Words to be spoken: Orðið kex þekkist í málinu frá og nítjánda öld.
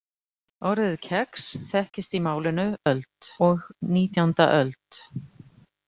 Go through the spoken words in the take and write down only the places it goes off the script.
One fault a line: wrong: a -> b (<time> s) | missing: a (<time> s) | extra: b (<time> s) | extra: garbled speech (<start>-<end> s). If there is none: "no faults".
wrong: frá -> öld (2.9 s)